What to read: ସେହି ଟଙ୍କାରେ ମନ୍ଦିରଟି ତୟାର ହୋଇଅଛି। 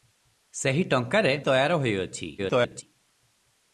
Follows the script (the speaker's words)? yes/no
no